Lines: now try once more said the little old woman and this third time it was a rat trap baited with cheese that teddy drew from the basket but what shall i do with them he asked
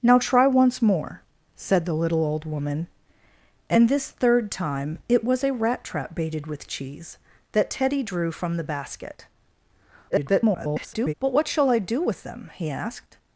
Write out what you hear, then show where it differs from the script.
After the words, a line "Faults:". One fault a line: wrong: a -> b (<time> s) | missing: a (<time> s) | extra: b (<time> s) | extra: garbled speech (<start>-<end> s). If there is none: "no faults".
now try once more said the little old woman and this third time it was a rat trap baited with cheese that teddy drew from the basket [garbled] but what shall i do with them he asked
Faults:
extra: garbled speech (10.1-11.1 s)